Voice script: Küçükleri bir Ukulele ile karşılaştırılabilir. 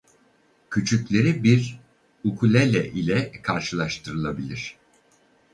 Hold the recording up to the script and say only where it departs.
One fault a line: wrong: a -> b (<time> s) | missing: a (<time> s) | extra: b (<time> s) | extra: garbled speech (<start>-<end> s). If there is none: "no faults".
no faults